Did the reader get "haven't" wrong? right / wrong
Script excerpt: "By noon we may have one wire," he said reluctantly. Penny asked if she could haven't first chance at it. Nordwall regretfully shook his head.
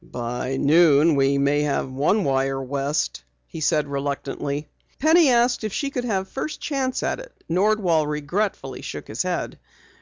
wrong